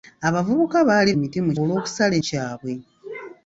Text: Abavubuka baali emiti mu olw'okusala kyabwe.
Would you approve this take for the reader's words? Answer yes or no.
yes